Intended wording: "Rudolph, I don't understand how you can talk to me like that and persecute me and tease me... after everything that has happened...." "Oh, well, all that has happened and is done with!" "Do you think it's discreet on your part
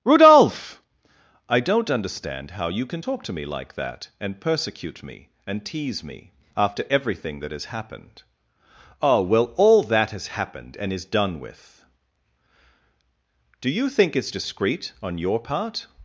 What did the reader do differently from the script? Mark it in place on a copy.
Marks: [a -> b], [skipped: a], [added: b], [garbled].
"Rudolph, I don't understand how you can talk to me like that and persecute me and tease me... after everything that has happened...." "Oh, well, all that has happened and is done with!" "Do you think it's discreet on your part